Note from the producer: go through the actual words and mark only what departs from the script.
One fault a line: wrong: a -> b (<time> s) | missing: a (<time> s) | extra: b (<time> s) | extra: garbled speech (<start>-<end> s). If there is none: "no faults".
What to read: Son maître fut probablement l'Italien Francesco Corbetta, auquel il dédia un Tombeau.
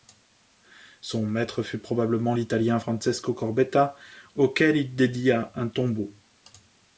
no faults